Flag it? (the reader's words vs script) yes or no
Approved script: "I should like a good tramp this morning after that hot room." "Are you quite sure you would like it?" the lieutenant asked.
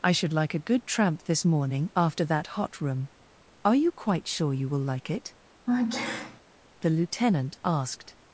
yes